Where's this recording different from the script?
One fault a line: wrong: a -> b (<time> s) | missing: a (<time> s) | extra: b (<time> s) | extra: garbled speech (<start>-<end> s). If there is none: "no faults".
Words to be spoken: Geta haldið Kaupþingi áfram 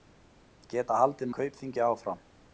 no faults